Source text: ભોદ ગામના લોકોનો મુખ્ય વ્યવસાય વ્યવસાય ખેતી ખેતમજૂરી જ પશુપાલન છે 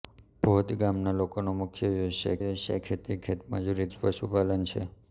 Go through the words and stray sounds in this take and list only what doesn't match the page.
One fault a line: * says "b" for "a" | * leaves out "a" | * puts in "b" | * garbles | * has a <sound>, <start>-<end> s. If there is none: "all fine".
all fine